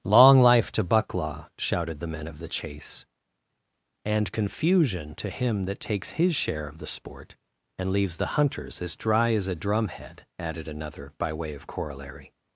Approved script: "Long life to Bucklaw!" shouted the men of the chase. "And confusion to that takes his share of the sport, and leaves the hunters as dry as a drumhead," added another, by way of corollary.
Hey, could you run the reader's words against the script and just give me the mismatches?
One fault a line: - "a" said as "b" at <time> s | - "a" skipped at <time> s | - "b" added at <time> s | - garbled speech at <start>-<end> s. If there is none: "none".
- "him" added at 5.3 s